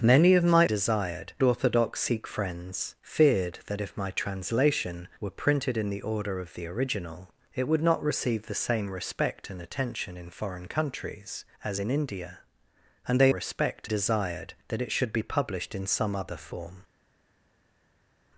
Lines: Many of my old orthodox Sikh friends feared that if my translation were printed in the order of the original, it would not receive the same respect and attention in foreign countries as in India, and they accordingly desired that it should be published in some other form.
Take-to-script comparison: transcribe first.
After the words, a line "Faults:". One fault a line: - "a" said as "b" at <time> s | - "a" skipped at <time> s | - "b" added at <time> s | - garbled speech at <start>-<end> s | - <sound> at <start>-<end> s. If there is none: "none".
Many of my desired orthodox Sikh friends feared that if my translation were printed in the order of the original, it would not receive the same respect and attention in foreign countries as in India, and they respect desired that it should be published in some other form.
Faults:
- "old" said as "desired" at 0.6 s
- "accordingly" said as "respect" at 13.3 s